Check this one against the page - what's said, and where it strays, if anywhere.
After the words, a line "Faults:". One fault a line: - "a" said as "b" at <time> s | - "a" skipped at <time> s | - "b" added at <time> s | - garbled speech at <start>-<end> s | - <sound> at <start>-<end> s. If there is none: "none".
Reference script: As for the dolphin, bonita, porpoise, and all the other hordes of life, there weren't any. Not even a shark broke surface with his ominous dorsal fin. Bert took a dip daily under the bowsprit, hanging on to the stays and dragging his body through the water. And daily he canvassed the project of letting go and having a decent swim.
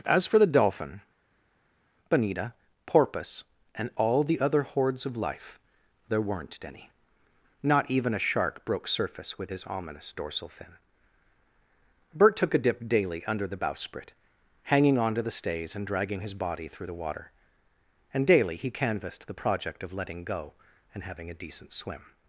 As for the dolphin, bonita, porpoise, and all the other hordes of life, there weren't any. Not even a shark broke surface with his ominous dorsal fin. Bert took a dip daily under the bowsprit, hanging on to the stays and dragging his body through the water. And daily he canvassed the project of letting go and having a decent swim.
Faults:
none